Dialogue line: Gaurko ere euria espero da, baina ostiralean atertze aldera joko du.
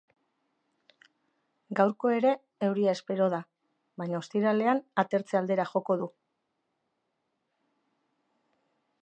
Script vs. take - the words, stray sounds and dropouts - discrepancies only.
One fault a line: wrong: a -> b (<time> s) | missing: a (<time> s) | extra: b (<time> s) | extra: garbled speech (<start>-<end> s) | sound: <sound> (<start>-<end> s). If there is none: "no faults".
no faults